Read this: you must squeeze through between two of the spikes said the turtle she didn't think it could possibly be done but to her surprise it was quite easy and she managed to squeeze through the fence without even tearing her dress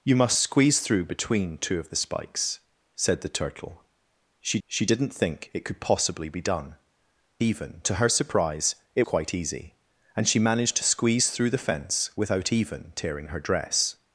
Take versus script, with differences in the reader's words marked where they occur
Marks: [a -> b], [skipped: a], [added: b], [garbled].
you must squeeze through between two of the spikes said the turtle she [added: she] didn't think it could possibly be done [but -> even] to her surprise it [skipped: was] quite easy and she managed to squeeze through the fence without even tearing her dress